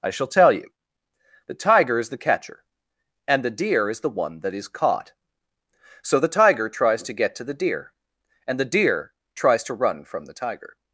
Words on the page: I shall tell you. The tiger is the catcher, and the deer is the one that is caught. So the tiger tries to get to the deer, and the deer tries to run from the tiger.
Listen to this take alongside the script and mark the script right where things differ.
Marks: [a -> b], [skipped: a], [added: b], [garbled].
I shall tell you. The tiger is the catcher, and the deer is the one that is caught. So the tiger tries to get to the deer, and the deer tries to run from the tiger.